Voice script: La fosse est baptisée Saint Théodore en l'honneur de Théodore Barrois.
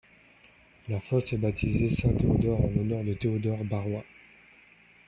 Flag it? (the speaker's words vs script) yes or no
no